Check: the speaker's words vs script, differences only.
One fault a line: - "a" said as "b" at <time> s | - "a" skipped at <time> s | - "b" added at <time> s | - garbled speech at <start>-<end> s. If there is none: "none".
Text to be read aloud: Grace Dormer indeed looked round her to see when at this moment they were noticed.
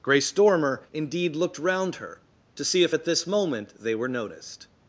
- "when" said as "if" at 2.8 s